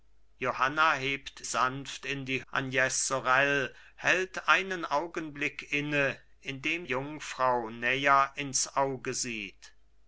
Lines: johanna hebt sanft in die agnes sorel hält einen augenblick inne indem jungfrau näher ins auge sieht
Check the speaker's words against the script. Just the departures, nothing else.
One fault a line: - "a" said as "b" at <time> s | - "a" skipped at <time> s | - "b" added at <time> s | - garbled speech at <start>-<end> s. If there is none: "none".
none